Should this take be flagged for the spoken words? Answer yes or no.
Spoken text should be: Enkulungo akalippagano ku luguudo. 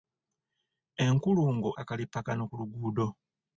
no